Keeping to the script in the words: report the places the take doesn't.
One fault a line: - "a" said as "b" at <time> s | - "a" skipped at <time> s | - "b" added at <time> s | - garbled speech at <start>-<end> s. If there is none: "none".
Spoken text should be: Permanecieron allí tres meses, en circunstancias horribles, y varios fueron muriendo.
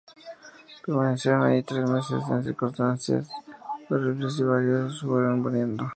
none